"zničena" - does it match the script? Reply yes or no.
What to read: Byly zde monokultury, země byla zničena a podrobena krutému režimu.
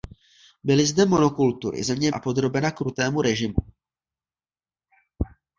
no